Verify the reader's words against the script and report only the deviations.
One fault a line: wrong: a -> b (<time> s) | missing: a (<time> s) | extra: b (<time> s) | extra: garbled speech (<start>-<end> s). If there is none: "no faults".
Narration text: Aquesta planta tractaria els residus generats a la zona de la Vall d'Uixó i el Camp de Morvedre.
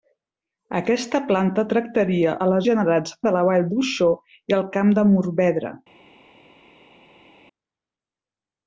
missing: els residus generats (2.3 s)
wrong: zona -> generats (2.7 s)